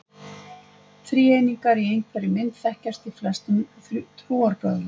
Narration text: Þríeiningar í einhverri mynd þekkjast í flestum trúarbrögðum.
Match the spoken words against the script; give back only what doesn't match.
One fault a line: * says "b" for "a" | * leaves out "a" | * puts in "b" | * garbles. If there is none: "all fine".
all fine